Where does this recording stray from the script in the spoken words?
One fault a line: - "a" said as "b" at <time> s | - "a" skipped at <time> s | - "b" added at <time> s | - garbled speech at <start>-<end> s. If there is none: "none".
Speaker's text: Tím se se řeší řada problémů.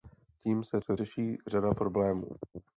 none